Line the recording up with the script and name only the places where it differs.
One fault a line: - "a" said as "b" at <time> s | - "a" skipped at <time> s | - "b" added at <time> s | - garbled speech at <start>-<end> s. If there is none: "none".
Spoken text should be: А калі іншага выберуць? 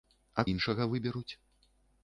- "калі" skipped at 0.5 s